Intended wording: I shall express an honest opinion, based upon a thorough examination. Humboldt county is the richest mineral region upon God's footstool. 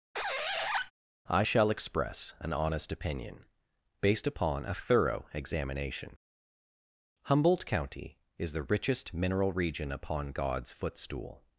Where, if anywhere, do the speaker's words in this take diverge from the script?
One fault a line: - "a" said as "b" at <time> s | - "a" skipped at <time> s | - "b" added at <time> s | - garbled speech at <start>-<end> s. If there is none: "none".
none